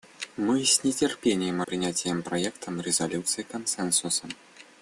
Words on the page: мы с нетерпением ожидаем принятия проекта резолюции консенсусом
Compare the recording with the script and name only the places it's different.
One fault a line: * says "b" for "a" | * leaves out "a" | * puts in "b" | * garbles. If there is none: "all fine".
* leaves out "ожидаем"